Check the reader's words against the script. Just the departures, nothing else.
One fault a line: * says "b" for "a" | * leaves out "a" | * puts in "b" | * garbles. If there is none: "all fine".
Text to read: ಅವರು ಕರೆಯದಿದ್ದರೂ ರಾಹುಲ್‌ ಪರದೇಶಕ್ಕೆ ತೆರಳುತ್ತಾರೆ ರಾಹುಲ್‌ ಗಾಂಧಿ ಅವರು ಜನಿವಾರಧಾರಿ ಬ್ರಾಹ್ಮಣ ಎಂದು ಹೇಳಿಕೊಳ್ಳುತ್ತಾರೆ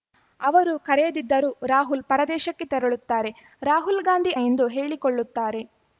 * leaves out "ಅವರು ಜನಿವಾರಧಾರಿ ಬ್ರಾಹ್ಮಣ"